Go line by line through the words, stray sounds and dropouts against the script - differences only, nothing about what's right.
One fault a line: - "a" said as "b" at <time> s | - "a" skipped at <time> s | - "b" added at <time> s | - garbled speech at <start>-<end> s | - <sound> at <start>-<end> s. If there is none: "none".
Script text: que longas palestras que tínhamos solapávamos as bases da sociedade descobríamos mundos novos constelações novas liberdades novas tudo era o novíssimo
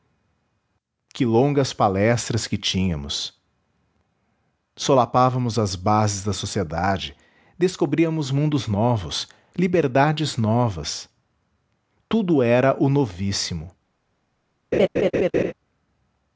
- "constelações novas" skipped at 9.3 s
- laugh at 14.7-15.5 s